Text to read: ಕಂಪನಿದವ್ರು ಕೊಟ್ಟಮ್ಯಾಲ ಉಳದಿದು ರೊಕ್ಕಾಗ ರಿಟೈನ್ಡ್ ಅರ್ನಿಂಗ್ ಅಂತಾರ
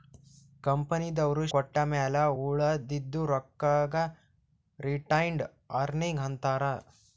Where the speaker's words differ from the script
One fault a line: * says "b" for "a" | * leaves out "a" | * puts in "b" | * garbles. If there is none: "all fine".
all fine